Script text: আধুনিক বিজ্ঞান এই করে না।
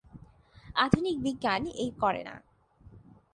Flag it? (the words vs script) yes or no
no